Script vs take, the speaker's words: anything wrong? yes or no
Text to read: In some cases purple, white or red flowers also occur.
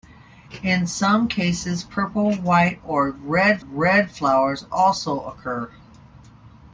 yes